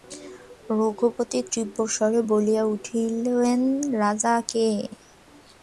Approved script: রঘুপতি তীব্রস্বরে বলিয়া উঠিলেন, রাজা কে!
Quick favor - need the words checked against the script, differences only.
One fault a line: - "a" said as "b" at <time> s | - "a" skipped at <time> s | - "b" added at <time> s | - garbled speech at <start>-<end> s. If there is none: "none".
none